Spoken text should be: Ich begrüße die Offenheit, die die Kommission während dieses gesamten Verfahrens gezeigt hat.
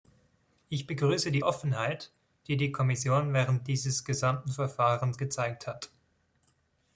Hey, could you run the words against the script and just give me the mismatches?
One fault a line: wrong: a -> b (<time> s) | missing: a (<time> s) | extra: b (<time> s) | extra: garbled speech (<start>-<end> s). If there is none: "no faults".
no faults